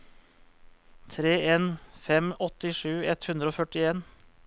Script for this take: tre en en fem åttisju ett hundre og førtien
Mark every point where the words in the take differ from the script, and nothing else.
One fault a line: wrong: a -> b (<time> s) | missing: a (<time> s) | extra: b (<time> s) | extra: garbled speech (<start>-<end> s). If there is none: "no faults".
no faults